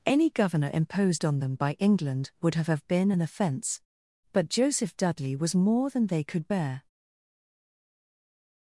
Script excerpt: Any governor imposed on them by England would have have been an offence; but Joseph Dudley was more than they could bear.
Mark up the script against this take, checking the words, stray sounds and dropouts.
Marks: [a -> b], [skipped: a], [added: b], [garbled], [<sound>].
Any governor imposed on them by England would have have been an offence; but Joseph Dudley was more than they could bear.